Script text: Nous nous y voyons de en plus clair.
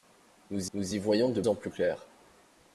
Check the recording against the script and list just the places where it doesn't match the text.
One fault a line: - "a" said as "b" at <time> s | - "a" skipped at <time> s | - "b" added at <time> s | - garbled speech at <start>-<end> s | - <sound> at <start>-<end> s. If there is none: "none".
none